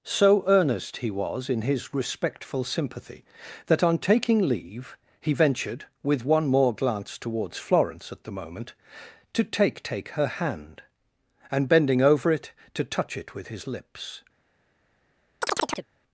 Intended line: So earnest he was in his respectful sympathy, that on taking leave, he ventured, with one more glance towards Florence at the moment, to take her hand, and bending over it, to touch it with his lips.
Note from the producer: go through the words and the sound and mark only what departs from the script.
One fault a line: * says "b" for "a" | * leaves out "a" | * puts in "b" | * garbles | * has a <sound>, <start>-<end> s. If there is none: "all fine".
* puts in "take"
* has a chirp, 15.4-15.9 s